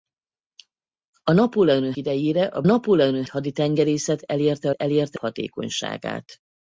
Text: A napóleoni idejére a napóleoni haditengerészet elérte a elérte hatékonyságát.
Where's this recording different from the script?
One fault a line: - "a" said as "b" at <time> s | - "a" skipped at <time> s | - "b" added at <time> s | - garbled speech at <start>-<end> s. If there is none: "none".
none